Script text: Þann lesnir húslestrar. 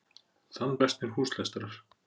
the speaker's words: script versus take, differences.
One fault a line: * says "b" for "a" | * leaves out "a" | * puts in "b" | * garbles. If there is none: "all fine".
all fine